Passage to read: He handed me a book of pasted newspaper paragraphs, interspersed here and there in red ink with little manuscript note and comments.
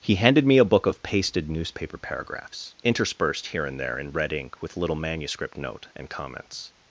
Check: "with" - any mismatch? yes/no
no